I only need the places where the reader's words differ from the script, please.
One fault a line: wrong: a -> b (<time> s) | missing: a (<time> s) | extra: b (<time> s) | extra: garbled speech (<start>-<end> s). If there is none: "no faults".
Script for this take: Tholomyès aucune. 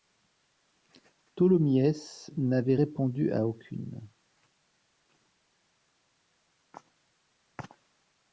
extra: n'avait répondu à (2.4 s)